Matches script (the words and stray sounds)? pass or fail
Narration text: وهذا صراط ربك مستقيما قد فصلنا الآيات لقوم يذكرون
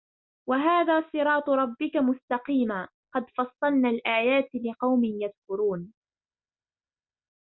pass